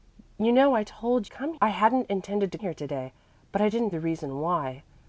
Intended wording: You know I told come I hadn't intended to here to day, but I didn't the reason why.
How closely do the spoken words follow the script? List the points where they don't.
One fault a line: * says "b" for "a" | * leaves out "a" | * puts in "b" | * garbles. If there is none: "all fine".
all fine